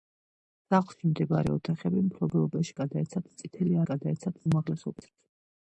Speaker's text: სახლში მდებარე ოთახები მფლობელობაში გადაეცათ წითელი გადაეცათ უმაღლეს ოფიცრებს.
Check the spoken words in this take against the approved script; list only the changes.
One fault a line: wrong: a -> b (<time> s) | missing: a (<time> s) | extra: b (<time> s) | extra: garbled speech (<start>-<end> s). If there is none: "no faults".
no faults